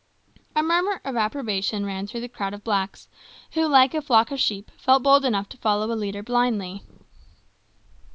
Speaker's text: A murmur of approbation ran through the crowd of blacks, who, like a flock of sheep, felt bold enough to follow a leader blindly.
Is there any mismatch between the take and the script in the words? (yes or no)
no